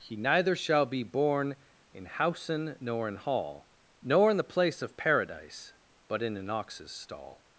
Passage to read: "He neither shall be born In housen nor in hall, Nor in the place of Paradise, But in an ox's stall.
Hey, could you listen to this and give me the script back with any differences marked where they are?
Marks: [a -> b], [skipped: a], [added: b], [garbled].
"He neither shall be born In housen nor in hall, Nor in the place of Paradise, But in an ox's stall.